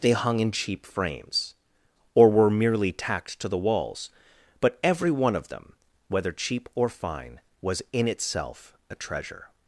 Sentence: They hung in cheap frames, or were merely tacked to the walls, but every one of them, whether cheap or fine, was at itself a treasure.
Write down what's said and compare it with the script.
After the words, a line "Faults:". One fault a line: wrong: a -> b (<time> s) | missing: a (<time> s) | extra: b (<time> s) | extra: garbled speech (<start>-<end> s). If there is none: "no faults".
They hung in cheap frames, or were merely tacked to the walls, but every one of them, whether cheap or fine, was in itself a treasure.
Faults:
wrong: at -> in (7.9 s)